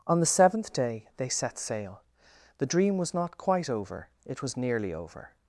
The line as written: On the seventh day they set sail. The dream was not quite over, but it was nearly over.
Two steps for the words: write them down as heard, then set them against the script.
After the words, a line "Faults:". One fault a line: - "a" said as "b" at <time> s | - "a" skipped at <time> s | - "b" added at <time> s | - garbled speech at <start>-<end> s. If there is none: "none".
On the seventh day they set sail. The dream was not quite over, it was nearly over.
Faults:
- "but" skipped at 4.1 s